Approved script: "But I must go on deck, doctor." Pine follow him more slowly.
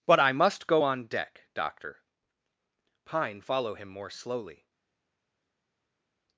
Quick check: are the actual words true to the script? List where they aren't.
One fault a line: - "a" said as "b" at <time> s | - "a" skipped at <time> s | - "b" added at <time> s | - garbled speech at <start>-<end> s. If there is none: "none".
none